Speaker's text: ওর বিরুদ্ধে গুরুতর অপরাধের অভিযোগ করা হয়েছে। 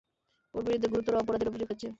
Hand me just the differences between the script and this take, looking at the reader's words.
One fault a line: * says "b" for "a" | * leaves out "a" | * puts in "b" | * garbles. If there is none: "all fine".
* leaves out "করা"